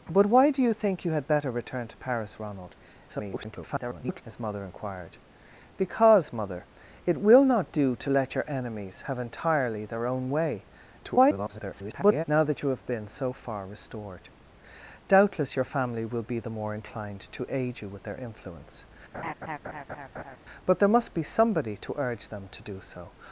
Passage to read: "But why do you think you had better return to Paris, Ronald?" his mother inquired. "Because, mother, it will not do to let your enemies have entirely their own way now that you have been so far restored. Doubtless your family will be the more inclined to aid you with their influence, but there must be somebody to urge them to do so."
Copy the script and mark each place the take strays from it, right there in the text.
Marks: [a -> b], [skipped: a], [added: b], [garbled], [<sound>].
"But why do you think you had better return to Paris, Ronald?" [garbled] his mother inquired. "Because, mother, it will not do to let your enemies have entirely their own way [garbled] now that you have been so far restored. Doubtless your family will be the more inclined to aid you with their influence, [laugh] but there must be somebody to urge them to do so."